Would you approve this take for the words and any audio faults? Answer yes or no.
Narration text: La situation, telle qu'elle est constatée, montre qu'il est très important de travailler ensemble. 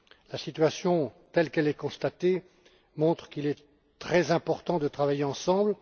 yes